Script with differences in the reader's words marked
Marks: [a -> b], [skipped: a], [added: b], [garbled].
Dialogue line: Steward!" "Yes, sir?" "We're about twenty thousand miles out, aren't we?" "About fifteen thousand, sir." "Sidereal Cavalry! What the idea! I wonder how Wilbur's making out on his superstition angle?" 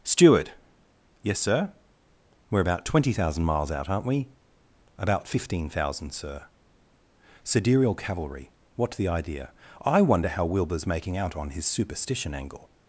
Steward!" "Yes, sir?" "We're about twenty thousand miles out, aren't we?" "About fifteen thousand, sir." "Sidereal Cavalry! What the idea! I wonder how Wilbur's making out on his superstition angle?"